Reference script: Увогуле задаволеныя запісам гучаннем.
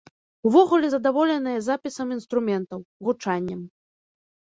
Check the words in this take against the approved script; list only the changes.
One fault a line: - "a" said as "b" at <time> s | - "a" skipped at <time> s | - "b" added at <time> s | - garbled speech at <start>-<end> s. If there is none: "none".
- "інструментаў" added at 2.2 s